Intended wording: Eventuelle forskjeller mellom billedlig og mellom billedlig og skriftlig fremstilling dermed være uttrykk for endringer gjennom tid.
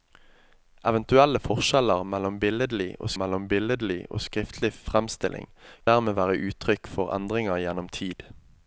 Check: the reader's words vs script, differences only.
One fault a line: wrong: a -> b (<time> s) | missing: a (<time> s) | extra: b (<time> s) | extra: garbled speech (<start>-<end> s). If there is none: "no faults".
no faults